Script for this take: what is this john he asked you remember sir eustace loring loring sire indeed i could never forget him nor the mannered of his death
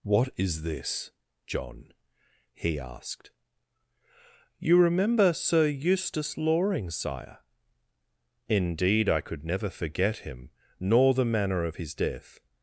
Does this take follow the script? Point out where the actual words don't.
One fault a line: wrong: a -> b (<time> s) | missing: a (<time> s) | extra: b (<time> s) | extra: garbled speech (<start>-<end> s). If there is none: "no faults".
missing: loring (6.9 s)
wrong: mannered -> manner (11.2 s)